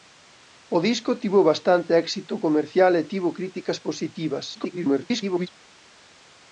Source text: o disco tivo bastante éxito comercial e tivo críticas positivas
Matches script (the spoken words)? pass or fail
fail